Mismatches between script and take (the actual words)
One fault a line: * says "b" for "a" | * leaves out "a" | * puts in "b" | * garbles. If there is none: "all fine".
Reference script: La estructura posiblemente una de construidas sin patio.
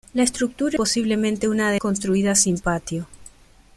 all fine